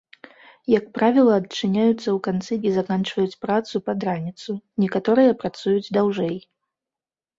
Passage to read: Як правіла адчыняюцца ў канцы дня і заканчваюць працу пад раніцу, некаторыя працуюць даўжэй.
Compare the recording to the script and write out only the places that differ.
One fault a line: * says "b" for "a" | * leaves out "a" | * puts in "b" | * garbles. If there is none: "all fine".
* leaves out "дня"